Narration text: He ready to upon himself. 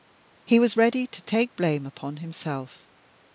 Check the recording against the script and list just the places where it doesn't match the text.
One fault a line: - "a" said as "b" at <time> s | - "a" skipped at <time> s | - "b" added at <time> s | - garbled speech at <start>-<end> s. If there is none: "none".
- "was" added at 0.6 s
- "take blame" added at 1.2 s